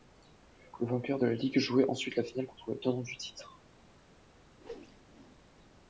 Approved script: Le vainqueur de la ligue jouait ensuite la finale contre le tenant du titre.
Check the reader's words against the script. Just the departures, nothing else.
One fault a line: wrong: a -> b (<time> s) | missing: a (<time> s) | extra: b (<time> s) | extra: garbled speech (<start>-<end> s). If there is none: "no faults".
no faults